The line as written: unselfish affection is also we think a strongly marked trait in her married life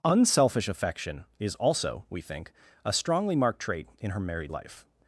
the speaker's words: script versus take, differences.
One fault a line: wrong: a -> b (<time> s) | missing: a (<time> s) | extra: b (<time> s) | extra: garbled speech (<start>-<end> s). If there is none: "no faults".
no faults